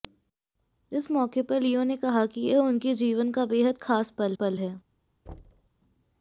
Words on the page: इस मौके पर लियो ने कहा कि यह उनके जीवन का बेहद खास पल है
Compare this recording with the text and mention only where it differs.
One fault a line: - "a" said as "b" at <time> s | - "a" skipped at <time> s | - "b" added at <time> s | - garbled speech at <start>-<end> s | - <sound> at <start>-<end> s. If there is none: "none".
- "पल" added at 4.3 s
- thud at 5.3-5.7 s